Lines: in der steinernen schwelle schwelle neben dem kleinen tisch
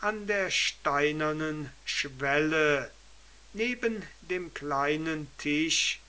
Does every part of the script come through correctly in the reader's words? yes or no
no